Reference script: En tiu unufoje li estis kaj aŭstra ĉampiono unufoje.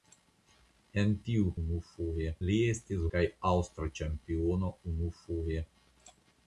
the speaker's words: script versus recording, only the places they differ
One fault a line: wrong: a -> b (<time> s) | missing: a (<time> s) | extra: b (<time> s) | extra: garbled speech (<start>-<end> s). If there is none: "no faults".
no faults